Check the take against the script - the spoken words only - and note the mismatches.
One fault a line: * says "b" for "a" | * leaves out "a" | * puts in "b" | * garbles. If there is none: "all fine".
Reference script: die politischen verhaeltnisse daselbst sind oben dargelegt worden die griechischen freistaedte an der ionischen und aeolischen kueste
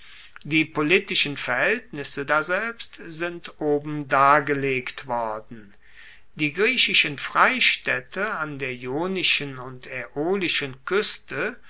all fine